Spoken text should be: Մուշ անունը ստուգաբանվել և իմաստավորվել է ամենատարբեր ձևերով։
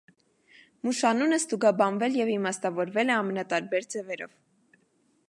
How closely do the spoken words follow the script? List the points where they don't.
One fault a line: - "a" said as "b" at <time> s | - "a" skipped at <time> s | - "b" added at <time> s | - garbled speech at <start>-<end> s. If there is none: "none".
none